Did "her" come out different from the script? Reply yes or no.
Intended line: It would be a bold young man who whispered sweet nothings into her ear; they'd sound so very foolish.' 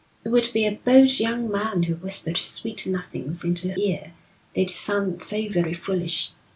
yes